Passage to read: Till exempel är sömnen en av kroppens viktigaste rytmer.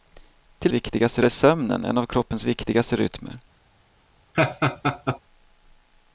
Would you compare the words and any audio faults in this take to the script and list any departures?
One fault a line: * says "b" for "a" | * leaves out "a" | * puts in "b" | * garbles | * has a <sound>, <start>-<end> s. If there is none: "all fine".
* says "viktigaste" for "exempel"
* has a laugh, 4.3-5.2 s